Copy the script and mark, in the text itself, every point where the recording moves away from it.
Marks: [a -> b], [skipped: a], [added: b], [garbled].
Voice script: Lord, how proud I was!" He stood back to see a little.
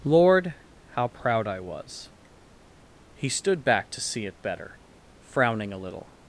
Lord, how proud I was!" He stood back to see [added: it better frowning] a little.